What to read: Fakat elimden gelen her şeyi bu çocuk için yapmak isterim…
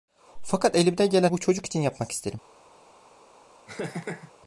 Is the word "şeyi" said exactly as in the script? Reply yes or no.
no